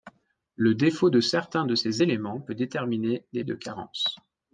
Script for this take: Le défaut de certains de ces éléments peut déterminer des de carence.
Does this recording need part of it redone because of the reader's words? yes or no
no